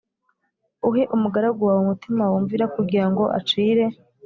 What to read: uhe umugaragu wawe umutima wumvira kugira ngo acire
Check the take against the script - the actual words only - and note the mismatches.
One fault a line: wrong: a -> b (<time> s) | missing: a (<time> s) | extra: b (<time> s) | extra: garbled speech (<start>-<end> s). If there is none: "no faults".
no faults